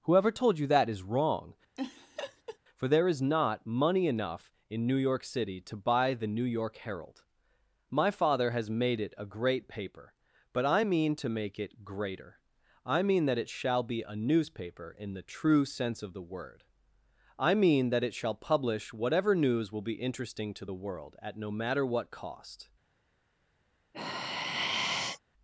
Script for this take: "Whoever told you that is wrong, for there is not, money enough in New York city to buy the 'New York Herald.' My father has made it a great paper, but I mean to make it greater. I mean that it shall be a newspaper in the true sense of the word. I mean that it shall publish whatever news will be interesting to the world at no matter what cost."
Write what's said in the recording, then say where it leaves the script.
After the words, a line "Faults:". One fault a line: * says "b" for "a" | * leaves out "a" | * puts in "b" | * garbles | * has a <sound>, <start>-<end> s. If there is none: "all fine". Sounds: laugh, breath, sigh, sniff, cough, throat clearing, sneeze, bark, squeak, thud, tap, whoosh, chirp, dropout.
"Whoever told you that is wrong, for there is not, money enough in New York city to buy the 'New York Herald.' My father has made it a great paper, but I mean to make it greater. I mean that it shall be a newspaper in the true sense of the word. I mean that it shall publish whatever news will be interesting to the world at no matter what cost."
Faults:
* has a laugh, 1.8-2.6 s
* has a sigh, 23.9-25.2 s